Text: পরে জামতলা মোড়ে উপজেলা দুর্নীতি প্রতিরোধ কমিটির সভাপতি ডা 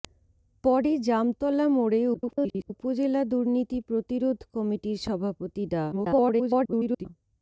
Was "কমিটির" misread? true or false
false